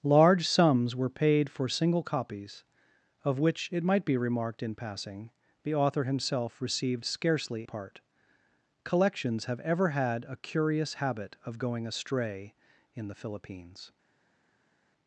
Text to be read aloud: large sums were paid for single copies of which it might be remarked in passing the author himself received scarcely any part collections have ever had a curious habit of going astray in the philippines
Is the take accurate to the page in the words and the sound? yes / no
no